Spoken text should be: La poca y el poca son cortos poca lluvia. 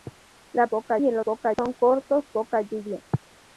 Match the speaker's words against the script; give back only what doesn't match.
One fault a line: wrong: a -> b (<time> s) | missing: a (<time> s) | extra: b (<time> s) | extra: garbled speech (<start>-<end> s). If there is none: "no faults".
no faults